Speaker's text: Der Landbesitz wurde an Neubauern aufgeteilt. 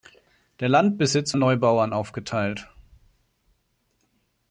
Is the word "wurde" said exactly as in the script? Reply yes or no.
no